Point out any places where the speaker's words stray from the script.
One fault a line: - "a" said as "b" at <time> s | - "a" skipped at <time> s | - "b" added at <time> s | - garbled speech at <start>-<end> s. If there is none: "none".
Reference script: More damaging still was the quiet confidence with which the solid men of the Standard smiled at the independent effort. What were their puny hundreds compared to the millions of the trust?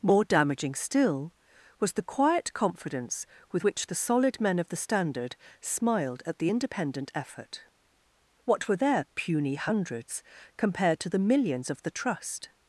none